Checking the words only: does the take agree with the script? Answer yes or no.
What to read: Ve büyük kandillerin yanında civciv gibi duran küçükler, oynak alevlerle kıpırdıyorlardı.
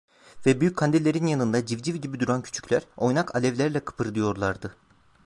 yes